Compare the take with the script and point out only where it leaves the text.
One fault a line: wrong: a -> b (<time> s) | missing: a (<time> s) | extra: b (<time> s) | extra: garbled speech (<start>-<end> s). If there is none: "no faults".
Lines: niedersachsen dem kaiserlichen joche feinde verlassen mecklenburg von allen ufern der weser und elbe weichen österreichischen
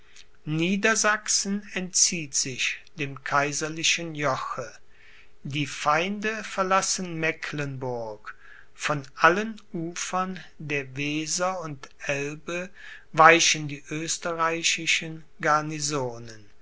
extra: entzieht sich (1.8 s)
extra: die (5.4 s)
extra: die (13.7 s)